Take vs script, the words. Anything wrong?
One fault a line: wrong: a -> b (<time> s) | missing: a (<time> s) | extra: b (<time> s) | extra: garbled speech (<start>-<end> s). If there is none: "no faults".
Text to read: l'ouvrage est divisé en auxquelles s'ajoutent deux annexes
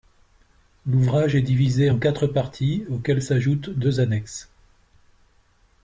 extra: quatre parties (2.0 s)